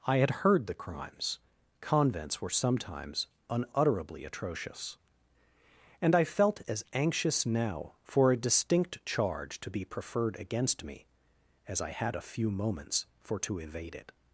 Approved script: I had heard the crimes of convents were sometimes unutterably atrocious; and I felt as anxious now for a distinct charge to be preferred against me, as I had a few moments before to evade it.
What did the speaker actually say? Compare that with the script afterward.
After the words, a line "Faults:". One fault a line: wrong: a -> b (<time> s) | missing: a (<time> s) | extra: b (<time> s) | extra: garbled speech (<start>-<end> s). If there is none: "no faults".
I had heard the crimes convents were sometimes unutterably atrocious; and I felt as anxious now for a distinct charge to be preferred against me, as I had a few moments for to evade it.
Faults:
missing: of (1.4 s)
wrong: before -> for (13.2 s)